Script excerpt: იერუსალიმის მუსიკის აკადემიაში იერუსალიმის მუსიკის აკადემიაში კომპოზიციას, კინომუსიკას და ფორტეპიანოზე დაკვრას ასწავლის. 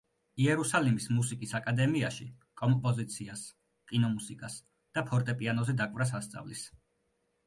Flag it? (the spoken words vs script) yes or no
yes